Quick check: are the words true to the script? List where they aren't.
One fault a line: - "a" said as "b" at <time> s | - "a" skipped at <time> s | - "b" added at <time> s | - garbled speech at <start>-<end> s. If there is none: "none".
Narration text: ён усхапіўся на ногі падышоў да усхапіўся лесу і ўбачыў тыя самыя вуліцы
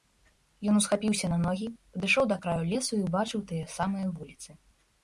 - "усхапіўся" said as "краю" at 2.5 s